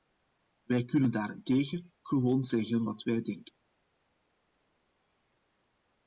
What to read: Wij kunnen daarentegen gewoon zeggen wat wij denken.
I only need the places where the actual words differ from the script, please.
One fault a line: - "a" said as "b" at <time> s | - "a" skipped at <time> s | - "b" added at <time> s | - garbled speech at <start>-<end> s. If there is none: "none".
none